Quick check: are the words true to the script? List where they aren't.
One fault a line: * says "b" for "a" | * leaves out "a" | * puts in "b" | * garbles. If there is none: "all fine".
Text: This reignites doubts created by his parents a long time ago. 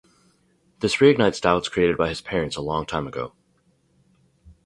all fine